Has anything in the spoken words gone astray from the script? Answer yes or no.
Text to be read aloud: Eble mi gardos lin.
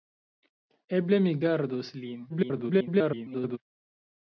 yes